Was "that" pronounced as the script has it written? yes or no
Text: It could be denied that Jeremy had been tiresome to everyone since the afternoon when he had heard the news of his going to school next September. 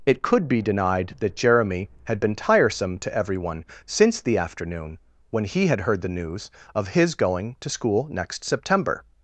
yes